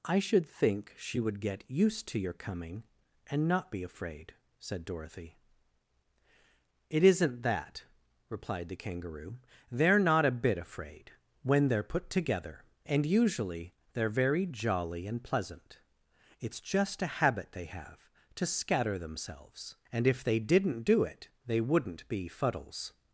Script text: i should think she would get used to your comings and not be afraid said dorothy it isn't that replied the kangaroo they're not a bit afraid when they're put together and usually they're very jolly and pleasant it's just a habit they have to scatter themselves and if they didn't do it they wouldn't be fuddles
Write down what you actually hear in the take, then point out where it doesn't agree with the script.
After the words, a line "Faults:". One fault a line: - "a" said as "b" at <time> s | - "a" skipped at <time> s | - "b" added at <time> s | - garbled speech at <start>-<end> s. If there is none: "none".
i should think she would get used to your coming and not be afraid said dorothy it isn't that replied the kangaroo they're not a bit afraid when they're put together and usually they're very jolly and pleasant it's just a habit they have to scatter themselves and if they didn't do it they wouldn't be fuddles
Faults:
- "comings" said as "coming" at 2.3 s